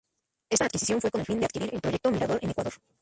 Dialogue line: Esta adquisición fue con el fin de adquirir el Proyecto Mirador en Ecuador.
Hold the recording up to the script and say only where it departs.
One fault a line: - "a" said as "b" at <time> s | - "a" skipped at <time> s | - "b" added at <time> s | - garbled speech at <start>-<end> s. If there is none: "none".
none